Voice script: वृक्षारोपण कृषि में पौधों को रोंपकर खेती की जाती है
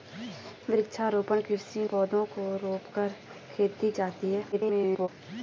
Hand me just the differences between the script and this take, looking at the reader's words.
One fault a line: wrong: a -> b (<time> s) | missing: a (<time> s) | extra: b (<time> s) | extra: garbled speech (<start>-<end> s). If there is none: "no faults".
missing: में (1.8 s)
missing: की (3.9 s)
extra: garbled speech (4.5-5.1 s)